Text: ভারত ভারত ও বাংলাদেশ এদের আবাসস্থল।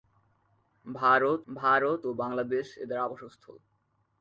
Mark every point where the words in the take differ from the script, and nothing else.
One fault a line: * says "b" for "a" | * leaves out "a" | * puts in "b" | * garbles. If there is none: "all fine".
all fine